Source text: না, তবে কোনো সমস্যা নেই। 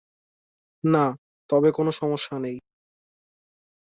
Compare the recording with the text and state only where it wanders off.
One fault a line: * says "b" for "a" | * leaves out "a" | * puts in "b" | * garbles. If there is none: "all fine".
all fine